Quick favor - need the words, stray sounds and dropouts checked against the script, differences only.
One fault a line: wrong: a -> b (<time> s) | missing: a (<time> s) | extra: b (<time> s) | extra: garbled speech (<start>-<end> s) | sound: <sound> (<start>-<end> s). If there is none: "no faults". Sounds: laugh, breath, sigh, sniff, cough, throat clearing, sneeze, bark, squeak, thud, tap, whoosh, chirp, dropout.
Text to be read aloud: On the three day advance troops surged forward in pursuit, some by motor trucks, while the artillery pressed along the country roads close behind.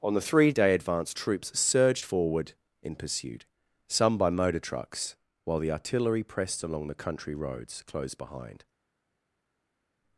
no faults